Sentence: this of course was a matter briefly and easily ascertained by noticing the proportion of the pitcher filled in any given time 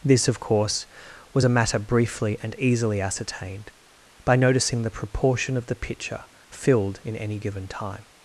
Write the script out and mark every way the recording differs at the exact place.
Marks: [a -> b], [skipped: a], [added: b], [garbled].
this of course was a matter briefly and easily ascertained by noticing the proportion of the pitcher filled in any given time